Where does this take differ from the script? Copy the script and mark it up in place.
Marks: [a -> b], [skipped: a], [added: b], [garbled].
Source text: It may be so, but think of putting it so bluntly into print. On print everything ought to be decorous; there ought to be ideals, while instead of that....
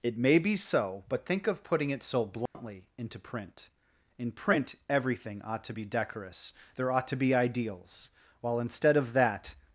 It may be so, but think of putting it so bluntly into print. [On -> In] print everything ought to be decorous; there ought to be ideals, while instead of that....